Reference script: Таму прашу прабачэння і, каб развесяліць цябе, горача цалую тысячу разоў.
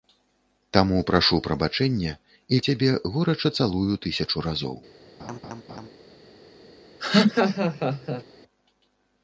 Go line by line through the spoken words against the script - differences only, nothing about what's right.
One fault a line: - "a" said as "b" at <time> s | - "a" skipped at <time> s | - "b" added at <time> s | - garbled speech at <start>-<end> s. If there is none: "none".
- "каб развесяліць" skipped at 2.6 s